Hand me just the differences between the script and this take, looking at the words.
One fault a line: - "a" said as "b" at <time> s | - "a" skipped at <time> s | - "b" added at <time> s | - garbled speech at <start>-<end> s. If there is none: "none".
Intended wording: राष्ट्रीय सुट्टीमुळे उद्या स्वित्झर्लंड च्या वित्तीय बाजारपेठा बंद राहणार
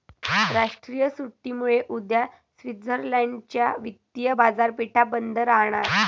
none